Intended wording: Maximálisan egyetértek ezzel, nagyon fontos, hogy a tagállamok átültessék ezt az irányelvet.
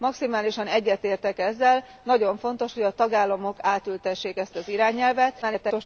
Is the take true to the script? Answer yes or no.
no